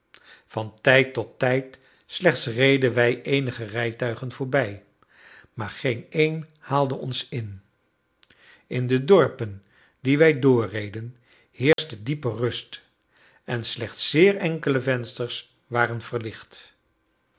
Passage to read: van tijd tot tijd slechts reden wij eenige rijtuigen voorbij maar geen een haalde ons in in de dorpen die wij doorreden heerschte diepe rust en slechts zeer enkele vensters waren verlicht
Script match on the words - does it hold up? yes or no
yes